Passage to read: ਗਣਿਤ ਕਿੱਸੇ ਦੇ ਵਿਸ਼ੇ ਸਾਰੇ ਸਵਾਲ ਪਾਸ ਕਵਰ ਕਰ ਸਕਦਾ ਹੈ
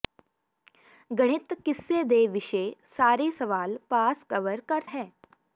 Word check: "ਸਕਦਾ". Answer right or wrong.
wrong